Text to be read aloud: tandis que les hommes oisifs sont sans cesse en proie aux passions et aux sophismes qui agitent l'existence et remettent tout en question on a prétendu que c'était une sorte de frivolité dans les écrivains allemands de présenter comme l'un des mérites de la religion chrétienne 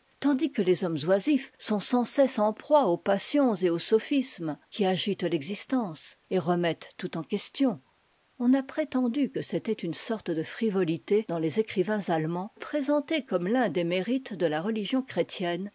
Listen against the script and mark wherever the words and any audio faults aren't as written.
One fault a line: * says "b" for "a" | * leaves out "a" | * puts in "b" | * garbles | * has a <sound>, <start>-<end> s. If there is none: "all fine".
* leaves out "de"